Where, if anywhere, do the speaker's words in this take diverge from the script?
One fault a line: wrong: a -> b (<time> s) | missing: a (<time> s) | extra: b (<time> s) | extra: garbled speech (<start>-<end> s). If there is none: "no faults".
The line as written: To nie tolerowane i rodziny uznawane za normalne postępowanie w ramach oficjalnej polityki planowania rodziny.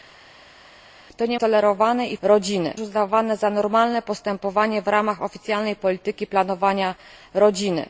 no faults